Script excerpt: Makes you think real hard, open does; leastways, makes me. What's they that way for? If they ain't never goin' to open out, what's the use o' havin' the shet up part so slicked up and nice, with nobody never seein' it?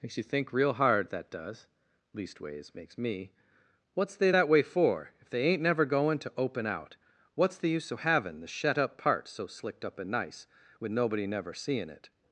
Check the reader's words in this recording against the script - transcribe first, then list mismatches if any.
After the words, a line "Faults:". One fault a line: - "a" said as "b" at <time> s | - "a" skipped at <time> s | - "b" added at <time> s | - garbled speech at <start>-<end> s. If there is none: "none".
Makes you think real hard, that does; leastways, makes me. What's they that way for? If they ain't never goin' to open out, what's the use o' havin' the shet up part so slicked up and nice, with nobody never seein' it?
Faults:
- "open" said as "that" at 1.1 s